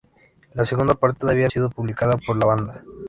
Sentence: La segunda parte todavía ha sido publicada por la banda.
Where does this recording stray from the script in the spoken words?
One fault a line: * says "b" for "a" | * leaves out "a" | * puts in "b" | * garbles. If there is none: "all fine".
all fine